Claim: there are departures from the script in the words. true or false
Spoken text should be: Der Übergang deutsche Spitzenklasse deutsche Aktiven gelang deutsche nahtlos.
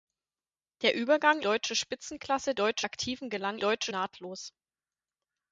false